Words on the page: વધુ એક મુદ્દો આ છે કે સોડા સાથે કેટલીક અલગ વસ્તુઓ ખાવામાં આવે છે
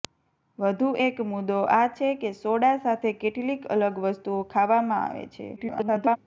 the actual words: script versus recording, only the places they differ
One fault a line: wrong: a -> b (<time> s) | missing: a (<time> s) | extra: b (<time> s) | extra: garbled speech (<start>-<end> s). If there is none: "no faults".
extra: garbled speech (5.6-6.2 s)